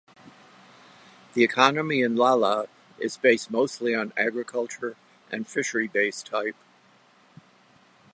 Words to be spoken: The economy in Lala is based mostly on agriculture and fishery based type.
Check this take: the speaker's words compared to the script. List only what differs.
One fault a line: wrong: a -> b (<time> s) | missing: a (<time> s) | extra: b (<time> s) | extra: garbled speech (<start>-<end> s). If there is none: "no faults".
no faults